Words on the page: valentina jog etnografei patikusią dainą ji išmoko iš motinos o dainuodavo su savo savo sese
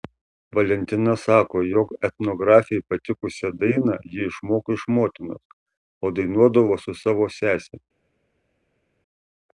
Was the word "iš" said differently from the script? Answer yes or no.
no